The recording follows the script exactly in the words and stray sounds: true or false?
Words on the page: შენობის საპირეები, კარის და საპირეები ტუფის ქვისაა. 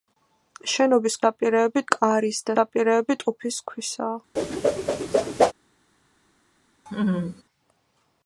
false